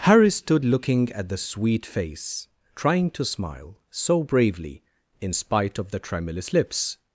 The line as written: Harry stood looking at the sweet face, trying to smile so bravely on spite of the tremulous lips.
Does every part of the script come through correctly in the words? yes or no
no